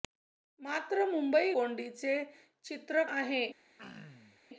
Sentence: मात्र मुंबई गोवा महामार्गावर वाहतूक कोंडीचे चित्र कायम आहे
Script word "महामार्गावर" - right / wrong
wrong